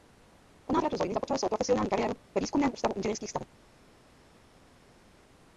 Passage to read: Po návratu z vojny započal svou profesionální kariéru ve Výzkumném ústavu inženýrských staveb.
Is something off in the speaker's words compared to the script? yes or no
no